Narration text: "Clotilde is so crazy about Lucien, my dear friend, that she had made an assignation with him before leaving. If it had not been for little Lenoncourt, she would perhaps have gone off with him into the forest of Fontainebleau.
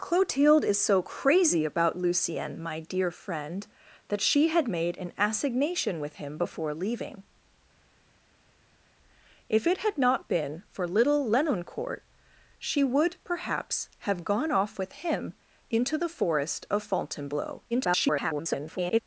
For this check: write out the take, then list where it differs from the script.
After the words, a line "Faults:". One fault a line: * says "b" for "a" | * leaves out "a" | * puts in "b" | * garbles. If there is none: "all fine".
"Clotilde is so crazy about Lucien, my dear friend, that she had made an assignation with him before leaving. If it had not been for little Lenoncourt, she would perhaps have gone off with him into the forest of Fontainebleau. [garbled]
Faults:
* garbles